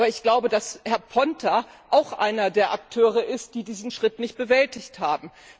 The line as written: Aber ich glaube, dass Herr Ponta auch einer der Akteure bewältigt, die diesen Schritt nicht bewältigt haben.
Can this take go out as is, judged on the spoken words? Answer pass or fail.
fail